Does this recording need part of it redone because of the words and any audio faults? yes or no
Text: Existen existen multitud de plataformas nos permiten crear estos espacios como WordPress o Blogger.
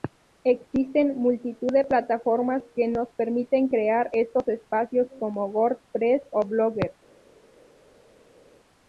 yes